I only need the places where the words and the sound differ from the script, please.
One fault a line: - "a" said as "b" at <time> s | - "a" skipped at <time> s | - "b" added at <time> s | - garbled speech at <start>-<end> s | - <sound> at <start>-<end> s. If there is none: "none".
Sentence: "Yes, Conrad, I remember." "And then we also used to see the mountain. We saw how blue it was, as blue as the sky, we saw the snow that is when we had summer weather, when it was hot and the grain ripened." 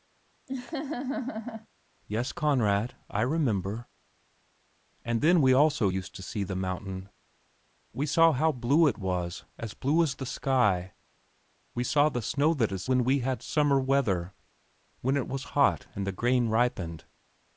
- laugh at 0.5-1.7 s